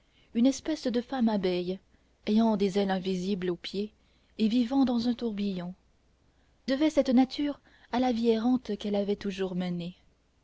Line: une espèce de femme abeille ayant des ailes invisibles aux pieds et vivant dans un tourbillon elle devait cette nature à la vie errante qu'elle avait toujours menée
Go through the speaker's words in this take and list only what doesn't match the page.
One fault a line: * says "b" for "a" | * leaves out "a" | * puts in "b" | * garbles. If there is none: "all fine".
* leaves out "elle"